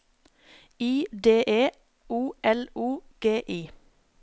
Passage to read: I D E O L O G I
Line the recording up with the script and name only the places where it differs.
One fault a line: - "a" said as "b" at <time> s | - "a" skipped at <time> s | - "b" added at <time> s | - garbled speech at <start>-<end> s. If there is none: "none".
none